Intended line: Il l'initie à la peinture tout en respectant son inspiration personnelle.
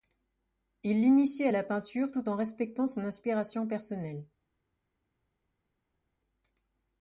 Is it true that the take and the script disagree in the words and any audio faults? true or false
false